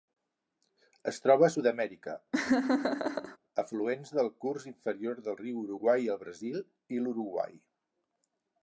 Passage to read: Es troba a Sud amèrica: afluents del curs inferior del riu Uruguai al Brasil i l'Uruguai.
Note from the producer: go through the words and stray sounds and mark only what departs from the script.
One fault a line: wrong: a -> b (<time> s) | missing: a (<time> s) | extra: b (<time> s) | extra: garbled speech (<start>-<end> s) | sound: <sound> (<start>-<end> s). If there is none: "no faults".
sound: laugh (2.3-3.4 s)